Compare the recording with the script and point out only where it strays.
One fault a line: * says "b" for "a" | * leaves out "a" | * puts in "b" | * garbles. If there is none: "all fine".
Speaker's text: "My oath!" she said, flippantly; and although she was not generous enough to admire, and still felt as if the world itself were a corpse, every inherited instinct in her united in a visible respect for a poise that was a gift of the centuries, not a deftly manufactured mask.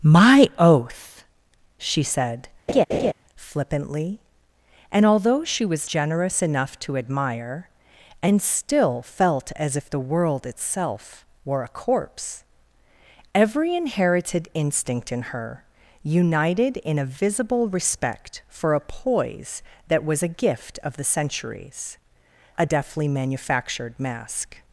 * leaves out "not"
* leaves out "not"